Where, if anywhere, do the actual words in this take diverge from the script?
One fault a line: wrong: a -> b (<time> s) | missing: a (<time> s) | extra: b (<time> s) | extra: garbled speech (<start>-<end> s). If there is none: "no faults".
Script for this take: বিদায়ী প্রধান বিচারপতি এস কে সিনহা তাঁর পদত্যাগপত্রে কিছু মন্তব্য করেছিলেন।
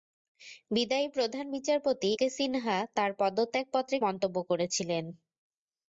missing: এস (2.1 s)
missing: কিছু (4.0 s)